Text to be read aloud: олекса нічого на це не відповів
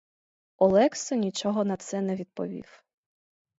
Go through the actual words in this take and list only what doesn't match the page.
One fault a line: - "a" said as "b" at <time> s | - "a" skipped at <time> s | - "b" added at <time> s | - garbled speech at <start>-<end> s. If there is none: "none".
none